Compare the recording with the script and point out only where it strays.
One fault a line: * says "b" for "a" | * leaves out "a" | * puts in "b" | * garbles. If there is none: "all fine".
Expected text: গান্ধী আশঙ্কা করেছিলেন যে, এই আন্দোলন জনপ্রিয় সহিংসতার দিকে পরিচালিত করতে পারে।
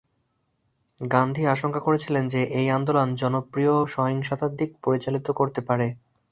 all fine